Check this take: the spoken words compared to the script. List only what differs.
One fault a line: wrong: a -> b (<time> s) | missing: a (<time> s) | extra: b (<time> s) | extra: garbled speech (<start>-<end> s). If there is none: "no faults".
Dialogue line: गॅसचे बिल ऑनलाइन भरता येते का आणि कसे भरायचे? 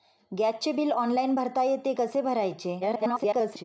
missing: का आणि (1.9 s)
extra: garbled speech (2.8-3.6 s)